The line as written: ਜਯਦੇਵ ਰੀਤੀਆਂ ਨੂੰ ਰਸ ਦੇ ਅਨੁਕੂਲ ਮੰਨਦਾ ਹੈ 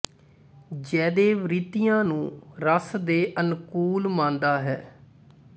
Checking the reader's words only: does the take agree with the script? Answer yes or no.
yes